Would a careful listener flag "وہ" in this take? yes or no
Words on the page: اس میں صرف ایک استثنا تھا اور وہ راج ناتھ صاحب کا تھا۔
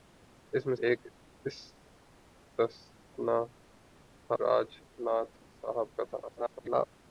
yes